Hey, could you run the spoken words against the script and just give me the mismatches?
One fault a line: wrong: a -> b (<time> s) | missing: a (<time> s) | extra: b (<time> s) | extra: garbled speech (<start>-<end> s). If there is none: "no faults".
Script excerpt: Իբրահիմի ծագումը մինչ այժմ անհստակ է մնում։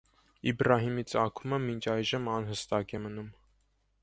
no faults